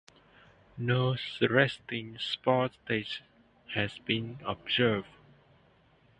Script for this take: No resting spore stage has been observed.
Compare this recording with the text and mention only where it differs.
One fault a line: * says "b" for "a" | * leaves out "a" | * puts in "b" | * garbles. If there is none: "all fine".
all fine